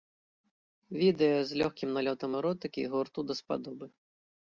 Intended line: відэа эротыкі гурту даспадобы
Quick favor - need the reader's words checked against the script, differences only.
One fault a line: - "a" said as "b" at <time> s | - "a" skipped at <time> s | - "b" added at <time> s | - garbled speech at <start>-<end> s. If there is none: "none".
- "з лёгкім налётам" added at 1.5 s